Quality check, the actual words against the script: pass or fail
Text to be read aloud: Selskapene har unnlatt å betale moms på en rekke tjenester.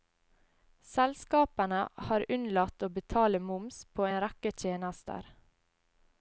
pass